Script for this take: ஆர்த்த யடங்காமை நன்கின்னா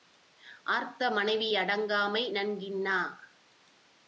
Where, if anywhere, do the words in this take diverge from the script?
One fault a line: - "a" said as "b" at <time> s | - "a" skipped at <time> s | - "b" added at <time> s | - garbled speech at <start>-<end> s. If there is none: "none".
- "மனைவி" added at 1.1 s